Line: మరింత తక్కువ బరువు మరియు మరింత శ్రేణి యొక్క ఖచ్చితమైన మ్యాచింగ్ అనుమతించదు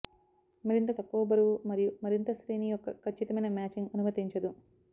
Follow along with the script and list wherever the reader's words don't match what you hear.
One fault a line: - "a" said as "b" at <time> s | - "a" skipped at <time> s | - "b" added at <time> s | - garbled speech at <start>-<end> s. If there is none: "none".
none